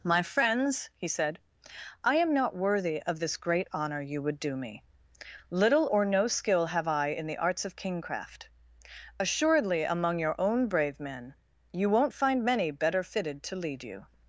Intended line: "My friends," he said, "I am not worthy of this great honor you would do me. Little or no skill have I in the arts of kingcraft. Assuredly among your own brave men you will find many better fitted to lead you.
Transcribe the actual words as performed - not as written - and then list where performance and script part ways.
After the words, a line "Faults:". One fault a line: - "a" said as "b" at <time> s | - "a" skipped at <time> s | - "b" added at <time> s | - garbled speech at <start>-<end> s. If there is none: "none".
"My friends," he said, "I am not worthy of this great honor you would do me. Little or no skill have I in the arts of kingcraft. Assuredly among your own brave men you won't find many better fitted to lead you.
Faults:
- "will" said as "won't" at 11.9 s